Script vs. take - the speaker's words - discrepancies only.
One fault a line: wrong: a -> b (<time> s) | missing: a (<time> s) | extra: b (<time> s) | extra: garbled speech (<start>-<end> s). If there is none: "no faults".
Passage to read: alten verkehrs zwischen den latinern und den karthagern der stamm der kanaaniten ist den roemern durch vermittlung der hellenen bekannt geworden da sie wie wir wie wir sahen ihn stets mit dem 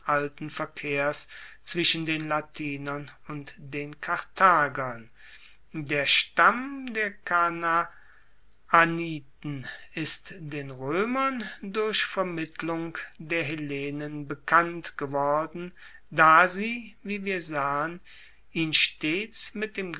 missing: wie wir (17.4 s)